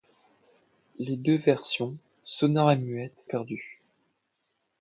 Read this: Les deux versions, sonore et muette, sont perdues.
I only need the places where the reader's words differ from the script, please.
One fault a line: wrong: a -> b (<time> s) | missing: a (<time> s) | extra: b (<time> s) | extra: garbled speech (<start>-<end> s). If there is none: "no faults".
missing: sont (3.2 s)